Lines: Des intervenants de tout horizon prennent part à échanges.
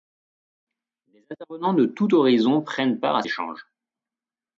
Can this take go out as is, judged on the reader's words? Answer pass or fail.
pass